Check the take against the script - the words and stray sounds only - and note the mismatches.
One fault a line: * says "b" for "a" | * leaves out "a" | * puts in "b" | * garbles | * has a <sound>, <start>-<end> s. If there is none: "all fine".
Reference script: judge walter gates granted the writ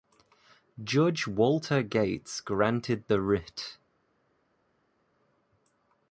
all fine